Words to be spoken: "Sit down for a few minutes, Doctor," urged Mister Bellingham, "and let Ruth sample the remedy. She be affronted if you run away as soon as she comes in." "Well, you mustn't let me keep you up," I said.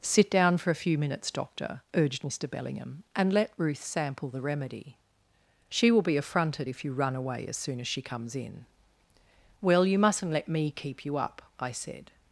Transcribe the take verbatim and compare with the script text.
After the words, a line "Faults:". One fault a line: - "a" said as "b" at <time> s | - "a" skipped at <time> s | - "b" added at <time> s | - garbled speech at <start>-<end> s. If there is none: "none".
"Sit down for a few minutes, Doctor," urged Mister Bellingham, "and let Ruth sample the remedy. She will be affronted if you run away as soon as she comes in." "Well, you mustn't let me keep you up," I said.
Faults:
- "will" added at 5.9 s